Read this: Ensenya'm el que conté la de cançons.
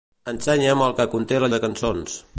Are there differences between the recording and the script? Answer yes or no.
no